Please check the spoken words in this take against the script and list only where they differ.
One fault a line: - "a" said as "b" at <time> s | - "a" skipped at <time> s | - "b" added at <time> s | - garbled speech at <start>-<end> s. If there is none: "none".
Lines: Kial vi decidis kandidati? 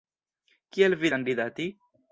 - "decidis" skipped at 1.1 s